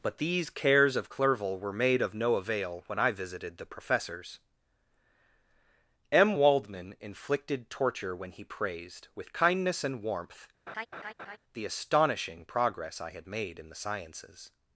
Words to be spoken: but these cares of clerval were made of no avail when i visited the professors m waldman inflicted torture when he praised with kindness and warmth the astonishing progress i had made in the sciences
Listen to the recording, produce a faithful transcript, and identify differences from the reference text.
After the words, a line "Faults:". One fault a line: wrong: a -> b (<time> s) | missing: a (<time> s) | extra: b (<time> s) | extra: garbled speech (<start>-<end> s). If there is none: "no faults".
but these cares of clerval were made of no avail when i visited the professors m waldman inflicted torture when he praised with kindness and warmth the astonishing progress i had made in the sciences
Faults:
no faults